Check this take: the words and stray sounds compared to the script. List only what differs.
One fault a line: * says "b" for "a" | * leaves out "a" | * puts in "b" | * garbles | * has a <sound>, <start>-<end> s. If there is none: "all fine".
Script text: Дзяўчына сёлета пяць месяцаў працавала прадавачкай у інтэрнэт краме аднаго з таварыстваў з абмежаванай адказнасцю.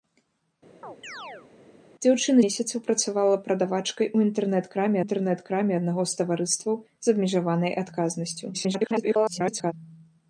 * has a chirp, 0.8-1.5 s
* leaves out "сёлета пяць"
* puts in "інтэрнэт краме"
* garbles